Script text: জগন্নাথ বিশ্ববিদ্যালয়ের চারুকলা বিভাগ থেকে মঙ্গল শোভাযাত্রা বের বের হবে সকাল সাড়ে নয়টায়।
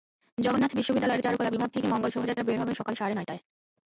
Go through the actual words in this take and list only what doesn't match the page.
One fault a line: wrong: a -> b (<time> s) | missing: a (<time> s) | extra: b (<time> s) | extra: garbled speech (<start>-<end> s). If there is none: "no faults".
missing: বের (2.6 s)